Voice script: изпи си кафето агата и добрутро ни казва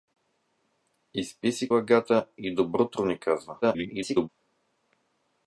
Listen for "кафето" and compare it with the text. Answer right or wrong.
wrong